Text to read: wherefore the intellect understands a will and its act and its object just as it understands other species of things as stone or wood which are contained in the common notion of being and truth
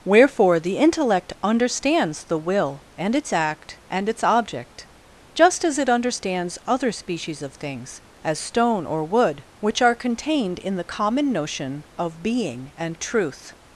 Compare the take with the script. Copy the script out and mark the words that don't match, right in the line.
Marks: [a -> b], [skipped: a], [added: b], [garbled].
wherefore the intellect understands [a -> the] will and its act and its object just as it understands other species of things as stone or wood which are contained in the common notion of being and truth